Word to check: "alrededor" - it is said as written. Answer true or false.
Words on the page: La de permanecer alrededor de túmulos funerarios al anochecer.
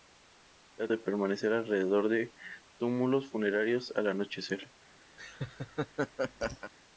true